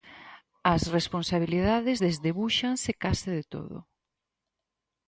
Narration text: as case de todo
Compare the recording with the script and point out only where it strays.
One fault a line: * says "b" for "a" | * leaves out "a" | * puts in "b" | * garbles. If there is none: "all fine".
* puts in "responsabilidades desdebúxanse"